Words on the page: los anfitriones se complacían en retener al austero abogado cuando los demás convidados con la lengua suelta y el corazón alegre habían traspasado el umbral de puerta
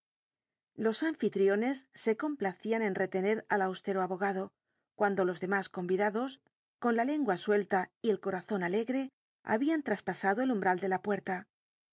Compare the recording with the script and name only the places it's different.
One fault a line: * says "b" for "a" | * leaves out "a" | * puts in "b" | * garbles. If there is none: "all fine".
* puts in "la"